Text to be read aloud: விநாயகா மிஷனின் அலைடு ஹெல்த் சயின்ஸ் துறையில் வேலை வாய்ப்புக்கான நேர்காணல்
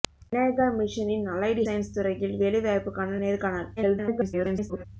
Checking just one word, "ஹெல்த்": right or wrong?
wrong